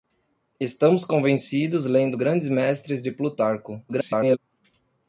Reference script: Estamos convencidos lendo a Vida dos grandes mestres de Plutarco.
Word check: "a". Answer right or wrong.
wrong